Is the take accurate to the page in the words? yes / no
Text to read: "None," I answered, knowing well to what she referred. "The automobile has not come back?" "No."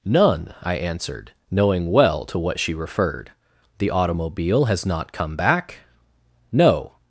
yes